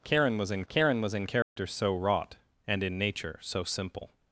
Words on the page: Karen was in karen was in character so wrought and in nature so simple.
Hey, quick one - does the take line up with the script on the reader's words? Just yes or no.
yes